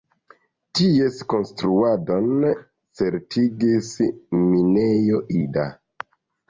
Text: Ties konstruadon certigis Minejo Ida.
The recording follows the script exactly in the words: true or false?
true